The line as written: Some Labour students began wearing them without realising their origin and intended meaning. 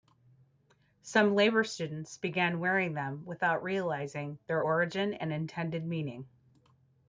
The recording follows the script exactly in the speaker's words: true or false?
true